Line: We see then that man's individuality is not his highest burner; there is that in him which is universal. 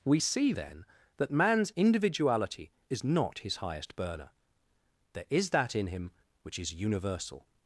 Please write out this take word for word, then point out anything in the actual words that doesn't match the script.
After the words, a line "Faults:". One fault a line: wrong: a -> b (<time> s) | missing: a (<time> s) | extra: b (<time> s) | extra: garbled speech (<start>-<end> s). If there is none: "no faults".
We see then that man's individuality is not his highest burner; there is that in him which is universal.
Faults:
no faults